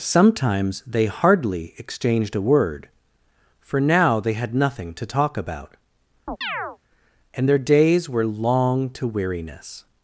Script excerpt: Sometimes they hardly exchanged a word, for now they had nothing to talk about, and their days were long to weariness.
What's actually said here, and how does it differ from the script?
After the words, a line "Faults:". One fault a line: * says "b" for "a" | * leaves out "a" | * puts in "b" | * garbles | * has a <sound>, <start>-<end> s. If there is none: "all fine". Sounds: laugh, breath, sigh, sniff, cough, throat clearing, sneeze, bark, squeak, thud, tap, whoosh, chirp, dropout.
Sometimes they hardly exchanged a word, for now they had nothing to talk about, and their days were long to weariness.
Faults:
* has a chirp, 6.3-6.8 s